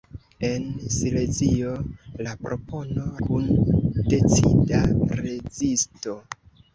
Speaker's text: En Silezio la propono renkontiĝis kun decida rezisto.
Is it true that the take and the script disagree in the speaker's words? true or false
true